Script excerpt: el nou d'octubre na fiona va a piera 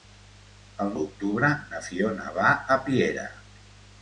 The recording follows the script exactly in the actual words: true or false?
false